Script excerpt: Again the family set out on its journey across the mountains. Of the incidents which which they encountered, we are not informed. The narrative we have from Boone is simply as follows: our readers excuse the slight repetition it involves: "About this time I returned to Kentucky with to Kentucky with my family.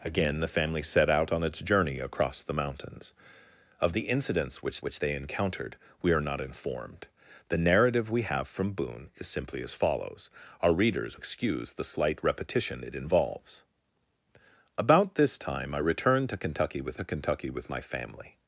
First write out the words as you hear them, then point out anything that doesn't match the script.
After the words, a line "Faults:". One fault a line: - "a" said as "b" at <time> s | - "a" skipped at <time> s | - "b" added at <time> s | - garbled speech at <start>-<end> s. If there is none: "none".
Again the family set out on its journey across the mountains. Of the incidents which which they encountered, we are not informed. The narrative we have from Boone is simply as follows: our readers excuse the slight repetition it involves: "About this time I returned to Kentucky with to Kentucky with my family.
Faults:
none